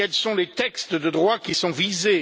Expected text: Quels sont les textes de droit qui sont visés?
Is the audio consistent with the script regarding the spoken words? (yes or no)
yes